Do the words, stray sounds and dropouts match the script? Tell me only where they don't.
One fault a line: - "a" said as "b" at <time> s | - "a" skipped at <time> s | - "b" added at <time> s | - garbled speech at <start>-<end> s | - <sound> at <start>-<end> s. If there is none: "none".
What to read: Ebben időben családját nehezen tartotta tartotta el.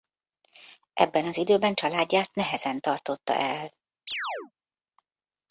- "az" added at 1.2 s
- "tartotta" skipped at 3.3 s
- chirp at 4.1-4.5 s